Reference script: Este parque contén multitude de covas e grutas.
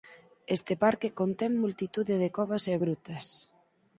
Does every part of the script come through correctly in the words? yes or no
yes